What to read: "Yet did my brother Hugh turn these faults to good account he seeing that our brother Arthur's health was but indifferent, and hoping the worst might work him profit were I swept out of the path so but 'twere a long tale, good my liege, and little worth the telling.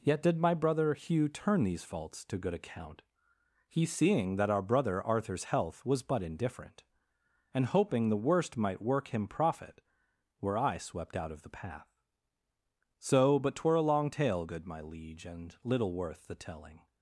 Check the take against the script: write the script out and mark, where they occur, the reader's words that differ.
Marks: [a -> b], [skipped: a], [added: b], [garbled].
"Yet did my brother Hugh turn these faults to good account he seeing that our brother Arthur's health was but indifferent, and hoping the worst might work him profit were I swept out of the path so but 'twere a long tale, good my liege, and little worth the telling.